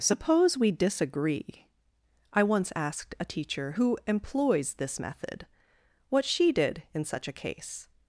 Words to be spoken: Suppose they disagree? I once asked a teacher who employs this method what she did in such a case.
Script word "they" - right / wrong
wrong